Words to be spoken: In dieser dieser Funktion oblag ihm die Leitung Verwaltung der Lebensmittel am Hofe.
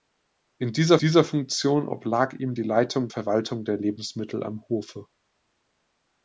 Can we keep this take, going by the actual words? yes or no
yes